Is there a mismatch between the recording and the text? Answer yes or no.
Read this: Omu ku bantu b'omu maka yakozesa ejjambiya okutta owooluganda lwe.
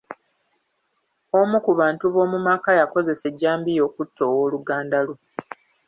no